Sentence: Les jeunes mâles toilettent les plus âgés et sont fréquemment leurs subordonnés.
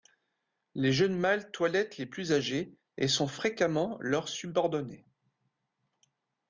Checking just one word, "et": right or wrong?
right